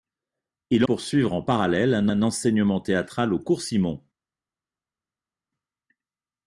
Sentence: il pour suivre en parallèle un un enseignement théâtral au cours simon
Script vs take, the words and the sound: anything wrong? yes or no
no